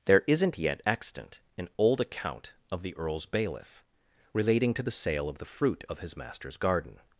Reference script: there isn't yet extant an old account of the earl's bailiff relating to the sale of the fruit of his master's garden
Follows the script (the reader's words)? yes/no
yes